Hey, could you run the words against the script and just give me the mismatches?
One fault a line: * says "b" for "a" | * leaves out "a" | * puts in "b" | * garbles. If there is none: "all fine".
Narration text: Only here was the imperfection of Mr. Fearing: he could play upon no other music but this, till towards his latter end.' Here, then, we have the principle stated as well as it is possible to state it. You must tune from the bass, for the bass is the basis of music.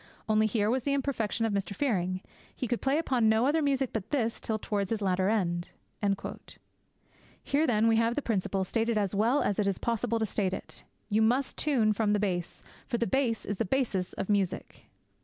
all fine